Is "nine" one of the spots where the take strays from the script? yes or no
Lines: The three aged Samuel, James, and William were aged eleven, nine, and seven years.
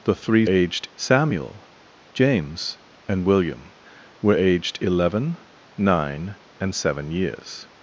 no